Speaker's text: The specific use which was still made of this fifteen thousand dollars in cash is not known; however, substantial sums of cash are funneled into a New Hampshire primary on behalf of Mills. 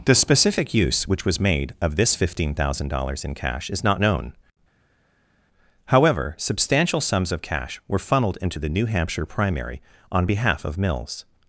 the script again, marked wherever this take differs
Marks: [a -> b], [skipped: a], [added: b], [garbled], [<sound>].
The specific use which was [skipped: still] made of this fifteen thousand dollars in cash is not known; however, substantial sums of cash [are -> were] funneled into [a -> the] New Hampshire primary on behalf of Mills.